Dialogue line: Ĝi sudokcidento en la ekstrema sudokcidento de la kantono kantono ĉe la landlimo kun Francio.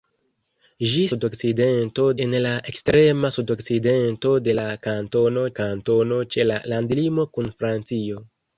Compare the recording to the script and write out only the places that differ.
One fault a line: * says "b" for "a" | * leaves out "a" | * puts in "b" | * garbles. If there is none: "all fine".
all fine